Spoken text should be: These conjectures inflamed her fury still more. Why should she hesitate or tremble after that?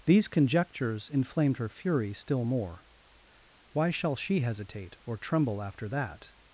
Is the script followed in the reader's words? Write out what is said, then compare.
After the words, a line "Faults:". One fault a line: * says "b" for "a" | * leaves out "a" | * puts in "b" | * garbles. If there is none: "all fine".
These conjectures inflamed her fury still more. Why shall she hesitate or tremble after that?
Faults:
* says "shall" for "should"